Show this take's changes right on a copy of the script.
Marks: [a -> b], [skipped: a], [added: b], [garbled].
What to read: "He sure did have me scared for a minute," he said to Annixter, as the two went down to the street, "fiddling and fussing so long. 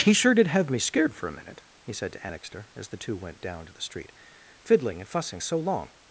"He sure did have me scared for a minute," he said to Annixter, as the two went down to the street, "fiddling and fussing so long.